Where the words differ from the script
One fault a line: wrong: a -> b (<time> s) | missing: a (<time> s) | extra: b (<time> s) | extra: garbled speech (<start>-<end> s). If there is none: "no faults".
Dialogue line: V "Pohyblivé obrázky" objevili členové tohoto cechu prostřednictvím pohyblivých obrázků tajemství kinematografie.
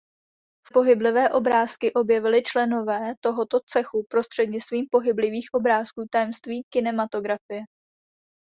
no faults